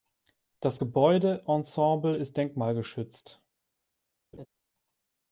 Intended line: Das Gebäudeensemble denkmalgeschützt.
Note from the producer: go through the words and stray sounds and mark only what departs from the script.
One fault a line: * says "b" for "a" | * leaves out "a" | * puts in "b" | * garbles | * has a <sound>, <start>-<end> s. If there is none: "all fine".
* puts in "ist"
* has a laugh, 4.3-4.5 s